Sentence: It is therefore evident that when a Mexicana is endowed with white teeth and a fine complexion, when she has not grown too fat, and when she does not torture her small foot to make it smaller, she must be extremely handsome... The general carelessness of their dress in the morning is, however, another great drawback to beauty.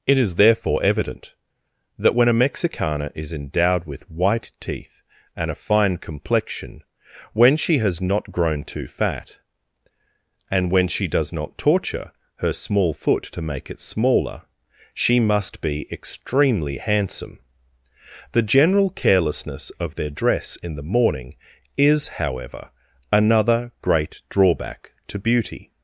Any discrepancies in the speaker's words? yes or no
no